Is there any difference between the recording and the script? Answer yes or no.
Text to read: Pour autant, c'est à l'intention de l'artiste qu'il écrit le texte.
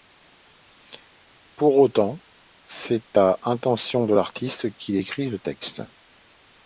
no